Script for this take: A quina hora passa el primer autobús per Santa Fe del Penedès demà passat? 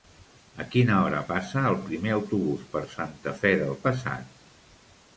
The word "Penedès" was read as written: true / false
false